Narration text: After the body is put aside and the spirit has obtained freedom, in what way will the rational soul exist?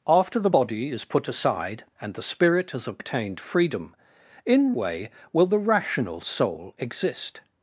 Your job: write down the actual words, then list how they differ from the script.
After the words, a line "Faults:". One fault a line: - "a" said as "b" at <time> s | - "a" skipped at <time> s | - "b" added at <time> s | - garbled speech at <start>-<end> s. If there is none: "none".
After the body is put aside and the spirit has obtained freedom, in way will the rational soul exist?
Faults:
- "what" skipped at 4.7 s